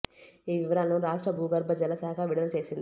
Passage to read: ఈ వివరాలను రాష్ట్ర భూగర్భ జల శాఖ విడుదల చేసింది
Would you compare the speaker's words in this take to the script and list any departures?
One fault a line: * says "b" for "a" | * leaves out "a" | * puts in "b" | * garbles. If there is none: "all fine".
all fine